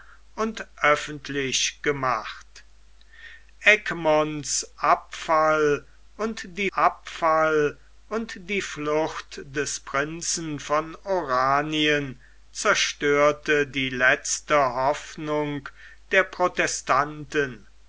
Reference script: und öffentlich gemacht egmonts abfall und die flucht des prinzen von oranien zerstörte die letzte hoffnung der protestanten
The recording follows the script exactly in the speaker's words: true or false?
false